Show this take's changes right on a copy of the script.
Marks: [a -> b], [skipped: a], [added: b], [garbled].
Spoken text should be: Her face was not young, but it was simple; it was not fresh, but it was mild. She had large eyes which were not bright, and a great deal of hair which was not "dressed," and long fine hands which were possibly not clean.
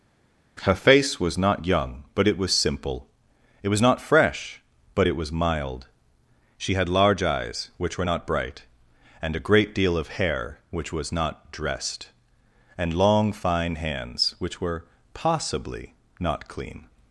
Her face was not young, but it was simple; it was not fresh, but it was mild. She had large eyes which were not bright, and a great deal of hair which was not "dressed," and long fine hands which were possibly not clean.